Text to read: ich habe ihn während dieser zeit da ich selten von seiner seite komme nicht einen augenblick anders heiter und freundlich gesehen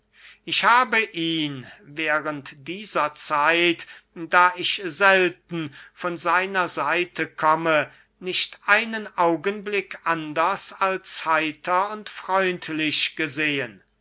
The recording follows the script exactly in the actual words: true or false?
false